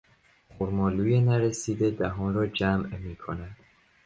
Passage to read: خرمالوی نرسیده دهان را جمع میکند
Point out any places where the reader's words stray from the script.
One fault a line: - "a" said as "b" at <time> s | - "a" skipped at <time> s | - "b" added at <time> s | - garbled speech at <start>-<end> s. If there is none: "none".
none